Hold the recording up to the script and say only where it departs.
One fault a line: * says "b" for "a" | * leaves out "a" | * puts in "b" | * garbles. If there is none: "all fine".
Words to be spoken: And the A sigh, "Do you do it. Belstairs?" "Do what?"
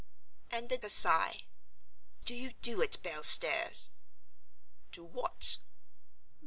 all fine